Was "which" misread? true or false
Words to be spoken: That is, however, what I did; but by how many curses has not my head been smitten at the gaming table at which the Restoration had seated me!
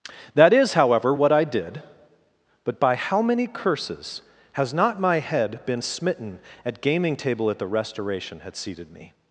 true